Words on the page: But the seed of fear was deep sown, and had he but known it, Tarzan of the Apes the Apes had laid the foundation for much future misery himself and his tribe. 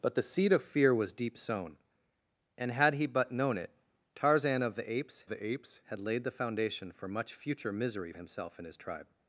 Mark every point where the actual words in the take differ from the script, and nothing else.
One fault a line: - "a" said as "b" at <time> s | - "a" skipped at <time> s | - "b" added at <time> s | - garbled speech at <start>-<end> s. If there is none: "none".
none